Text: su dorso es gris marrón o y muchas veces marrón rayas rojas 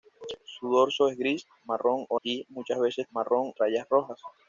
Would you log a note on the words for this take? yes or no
no